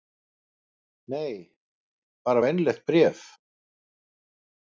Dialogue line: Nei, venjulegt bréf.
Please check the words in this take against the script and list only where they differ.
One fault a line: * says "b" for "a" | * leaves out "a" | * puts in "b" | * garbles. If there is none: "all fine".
* puts in "bara"